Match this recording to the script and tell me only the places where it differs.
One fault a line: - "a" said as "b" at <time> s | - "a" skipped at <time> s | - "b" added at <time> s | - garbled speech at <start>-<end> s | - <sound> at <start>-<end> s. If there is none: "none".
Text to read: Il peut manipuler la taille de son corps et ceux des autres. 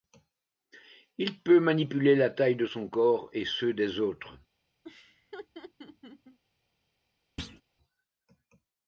- laugh at 4.8-6.4 s
- thud at 7.4-7.6 s